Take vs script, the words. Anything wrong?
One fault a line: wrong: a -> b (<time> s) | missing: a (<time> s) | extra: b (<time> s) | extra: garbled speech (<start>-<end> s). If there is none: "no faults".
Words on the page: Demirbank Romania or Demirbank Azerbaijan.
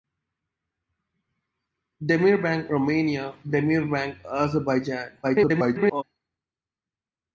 missing: or (3.4 s)
extra: garbled speech (5.2-6.0 s)